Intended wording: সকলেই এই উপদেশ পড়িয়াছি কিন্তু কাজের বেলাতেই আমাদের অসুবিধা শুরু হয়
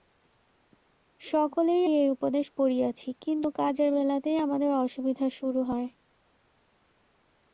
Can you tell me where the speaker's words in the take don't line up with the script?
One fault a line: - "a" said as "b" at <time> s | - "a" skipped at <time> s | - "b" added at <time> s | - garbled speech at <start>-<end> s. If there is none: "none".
none